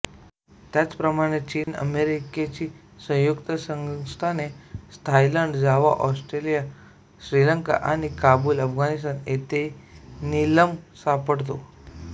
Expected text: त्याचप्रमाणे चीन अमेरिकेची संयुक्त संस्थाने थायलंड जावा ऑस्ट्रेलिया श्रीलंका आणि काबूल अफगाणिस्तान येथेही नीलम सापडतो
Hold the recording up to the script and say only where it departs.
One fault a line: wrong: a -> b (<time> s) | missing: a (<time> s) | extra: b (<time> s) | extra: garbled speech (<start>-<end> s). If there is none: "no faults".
no faults